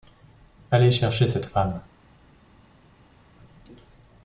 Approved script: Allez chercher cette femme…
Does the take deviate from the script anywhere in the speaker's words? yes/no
no